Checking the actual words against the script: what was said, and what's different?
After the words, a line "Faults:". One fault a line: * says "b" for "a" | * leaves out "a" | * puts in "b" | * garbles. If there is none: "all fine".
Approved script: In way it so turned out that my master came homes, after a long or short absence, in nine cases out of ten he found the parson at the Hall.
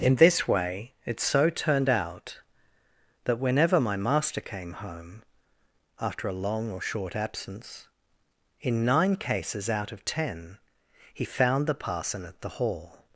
In this way it so turned out that whenever my master came home, after a long or short absence, in nine cases out of ten he found the parson at the Hall.
Faults:
* puts in "this"
* puts in "whenever"
* says "home" for "homes"